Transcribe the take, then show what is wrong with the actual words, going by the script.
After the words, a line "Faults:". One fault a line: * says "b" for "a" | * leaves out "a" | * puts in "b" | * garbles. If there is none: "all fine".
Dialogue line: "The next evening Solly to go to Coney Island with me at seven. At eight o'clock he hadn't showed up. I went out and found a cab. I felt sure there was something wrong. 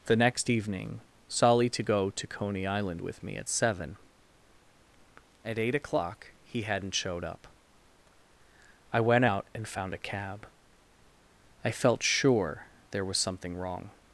"The next evening Solly to go to Coney Island with me at seven. At eight o'clock he hadn't showed up. I went out and found a cab. I felt sure there was something wrong.
Faults:
all fine